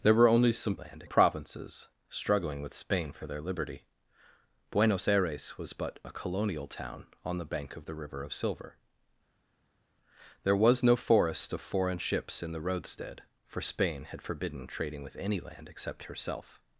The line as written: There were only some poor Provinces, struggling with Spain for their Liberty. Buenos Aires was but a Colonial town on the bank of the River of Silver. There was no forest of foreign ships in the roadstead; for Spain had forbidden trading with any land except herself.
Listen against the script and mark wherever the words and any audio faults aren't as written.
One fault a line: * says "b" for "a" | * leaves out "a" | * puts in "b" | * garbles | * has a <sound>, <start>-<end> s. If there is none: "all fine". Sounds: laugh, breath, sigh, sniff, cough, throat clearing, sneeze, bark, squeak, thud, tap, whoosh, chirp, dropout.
* says "land" for "poor"